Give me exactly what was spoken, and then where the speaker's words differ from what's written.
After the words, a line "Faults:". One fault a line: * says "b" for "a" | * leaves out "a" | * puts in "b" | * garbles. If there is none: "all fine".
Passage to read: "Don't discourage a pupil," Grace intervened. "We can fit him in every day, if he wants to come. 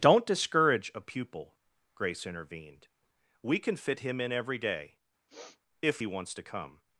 "Don't discourage a pupil," Grace intervened. "We can fit him in every day, if he wants to come.
Faults:
all fine